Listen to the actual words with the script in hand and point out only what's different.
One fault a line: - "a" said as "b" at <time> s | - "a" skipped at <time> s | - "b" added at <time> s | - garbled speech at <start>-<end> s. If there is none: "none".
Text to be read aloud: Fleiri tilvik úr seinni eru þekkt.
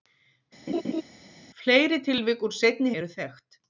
none